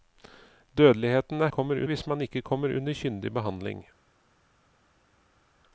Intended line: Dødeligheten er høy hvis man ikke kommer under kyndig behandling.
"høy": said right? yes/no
no